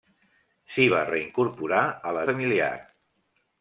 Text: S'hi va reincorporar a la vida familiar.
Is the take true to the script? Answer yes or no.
no